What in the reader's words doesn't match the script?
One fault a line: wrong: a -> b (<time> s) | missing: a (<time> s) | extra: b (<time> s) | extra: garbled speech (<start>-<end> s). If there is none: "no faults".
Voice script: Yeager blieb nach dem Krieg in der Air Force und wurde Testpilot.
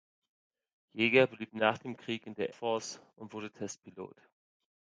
missing: Air (2.5 s)